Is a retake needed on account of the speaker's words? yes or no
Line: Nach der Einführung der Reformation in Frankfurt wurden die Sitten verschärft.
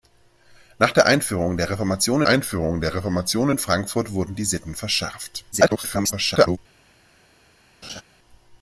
yes